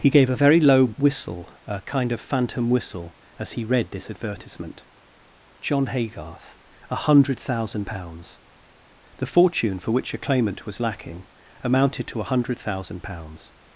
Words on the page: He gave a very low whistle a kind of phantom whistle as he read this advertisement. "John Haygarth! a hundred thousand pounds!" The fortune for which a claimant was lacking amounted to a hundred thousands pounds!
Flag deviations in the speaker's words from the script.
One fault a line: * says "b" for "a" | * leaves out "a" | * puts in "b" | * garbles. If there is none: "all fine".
* says "thousand" for "thousands"